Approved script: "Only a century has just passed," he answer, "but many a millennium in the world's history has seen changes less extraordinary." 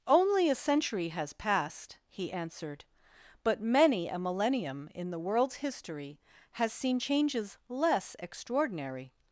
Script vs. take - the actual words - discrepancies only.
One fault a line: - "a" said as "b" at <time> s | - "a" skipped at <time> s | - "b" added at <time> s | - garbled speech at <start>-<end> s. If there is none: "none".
- "just" skipped at 1.3 s
- "answer" said as "answered" at 2.3 s